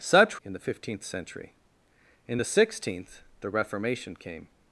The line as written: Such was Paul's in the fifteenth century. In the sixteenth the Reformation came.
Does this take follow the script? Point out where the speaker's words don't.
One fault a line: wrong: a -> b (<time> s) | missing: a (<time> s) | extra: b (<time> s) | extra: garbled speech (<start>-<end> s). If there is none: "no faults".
missing: was Paul's (0.4 s)